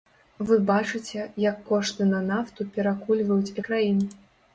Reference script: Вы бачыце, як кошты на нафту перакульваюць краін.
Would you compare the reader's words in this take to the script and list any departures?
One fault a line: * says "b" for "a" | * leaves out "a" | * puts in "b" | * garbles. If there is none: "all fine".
all fine